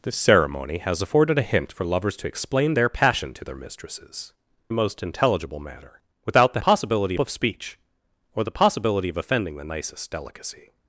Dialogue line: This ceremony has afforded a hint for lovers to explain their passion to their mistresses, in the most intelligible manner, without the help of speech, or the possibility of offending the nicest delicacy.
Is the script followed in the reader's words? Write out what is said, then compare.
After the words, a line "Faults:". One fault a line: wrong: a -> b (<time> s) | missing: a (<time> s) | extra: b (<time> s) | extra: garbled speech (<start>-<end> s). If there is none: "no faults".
This ceremony has afforded a hint for lovers to explain their passion to their mistresses, the most intelligible manner, without the possibility of speech, or the possibility of offending the nicest delicacy.
Faults:
missing: in (4.3 s)
wrong: help -> possibility (6.6 s)